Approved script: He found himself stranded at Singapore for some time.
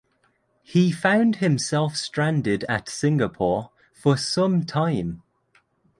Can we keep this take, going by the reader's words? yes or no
yes